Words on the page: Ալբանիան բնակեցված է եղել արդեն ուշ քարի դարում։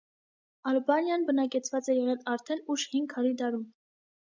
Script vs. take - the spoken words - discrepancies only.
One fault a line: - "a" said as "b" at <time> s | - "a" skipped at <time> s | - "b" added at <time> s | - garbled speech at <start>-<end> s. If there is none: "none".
- "հին" added at 3.0 s